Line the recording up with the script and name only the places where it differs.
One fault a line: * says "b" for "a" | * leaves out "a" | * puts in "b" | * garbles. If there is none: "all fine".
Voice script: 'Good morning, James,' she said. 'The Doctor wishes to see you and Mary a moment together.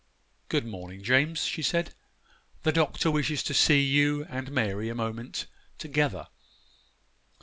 all fine